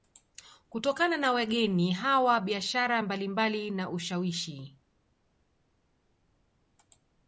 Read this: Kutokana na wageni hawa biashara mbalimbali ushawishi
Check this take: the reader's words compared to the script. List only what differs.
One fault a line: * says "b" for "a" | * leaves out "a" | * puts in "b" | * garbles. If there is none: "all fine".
* puts in "na"